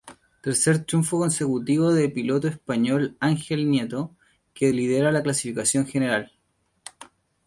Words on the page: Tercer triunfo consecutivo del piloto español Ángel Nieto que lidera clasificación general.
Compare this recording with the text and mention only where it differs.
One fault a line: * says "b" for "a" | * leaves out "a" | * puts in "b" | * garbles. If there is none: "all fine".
* puts in "la"